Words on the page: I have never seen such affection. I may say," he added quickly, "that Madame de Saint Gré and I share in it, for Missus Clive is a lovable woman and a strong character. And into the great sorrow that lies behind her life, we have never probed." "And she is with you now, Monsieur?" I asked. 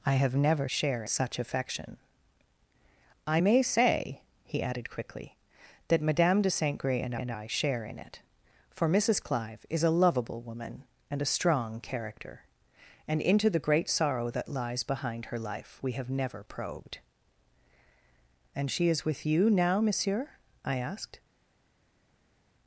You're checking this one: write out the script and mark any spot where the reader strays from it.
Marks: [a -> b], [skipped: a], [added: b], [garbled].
I have never [seen -> share] such affection. I may say," he added quickly, "that Madame de Saint Gré and [added: and] I share in it, for Missus Clive is a lovable woman and a strong character. And into the great sorrow that lies behind her life, we have never probed." "And she is with you now, Monsieur?" I asked.